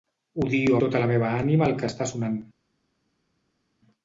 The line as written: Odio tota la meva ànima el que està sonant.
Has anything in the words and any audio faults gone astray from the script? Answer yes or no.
no